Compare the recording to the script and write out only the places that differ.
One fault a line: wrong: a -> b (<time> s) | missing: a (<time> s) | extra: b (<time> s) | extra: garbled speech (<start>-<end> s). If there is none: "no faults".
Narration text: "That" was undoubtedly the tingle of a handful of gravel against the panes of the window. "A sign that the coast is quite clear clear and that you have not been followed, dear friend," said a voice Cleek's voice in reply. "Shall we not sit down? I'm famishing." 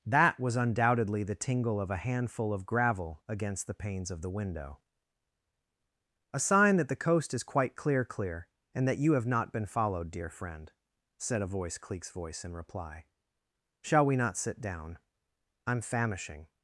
no faults